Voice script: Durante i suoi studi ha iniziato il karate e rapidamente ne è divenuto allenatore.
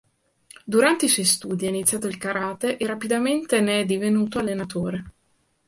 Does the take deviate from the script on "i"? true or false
false